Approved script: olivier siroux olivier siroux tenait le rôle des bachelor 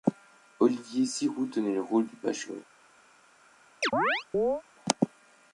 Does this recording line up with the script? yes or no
no